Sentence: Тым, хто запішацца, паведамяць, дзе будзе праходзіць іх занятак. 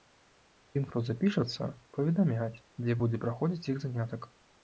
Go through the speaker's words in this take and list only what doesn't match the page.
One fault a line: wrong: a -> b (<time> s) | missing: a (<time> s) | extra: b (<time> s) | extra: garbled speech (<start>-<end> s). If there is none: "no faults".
no faults